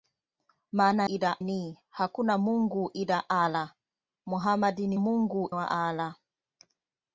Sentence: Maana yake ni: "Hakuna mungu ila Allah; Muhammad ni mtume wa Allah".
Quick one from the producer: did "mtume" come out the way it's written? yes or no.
no